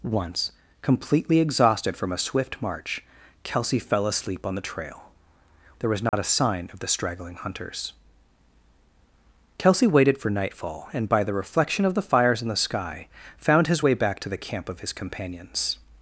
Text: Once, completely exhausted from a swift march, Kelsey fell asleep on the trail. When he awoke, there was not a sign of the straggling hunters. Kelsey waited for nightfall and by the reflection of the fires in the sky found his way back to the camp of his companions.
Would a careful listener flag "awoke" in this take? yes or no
yes